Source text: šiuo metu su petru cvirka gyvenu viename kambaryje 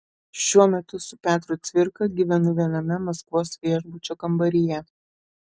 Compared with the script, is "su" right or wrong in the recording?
right